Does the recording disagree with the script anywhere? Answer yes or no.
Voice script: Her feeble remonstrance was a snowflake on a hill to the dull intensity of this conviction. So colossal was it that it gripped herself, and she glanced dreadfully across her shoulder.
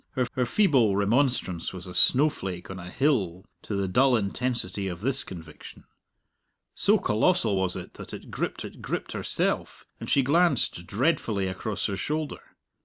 yes